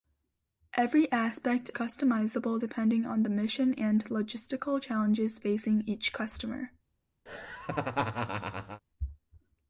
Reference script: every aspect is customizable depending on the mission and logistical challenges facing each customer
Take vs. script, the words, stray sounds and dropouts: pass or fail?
fail